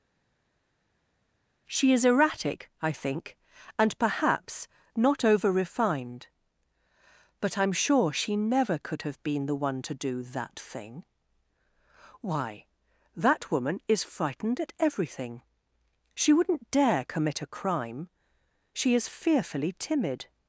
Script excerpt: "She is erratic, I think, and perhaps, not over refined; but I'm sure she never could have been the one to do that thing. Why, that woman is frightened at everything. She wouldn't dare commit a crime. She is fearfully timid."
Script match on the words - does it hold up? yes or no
yes